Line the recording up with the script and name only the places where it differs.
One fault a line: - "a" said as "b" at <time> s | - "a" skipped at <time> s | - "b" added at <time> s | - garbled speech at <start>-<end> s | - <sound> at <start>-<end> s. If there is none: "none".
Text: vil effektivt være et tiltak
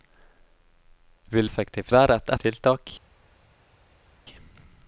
none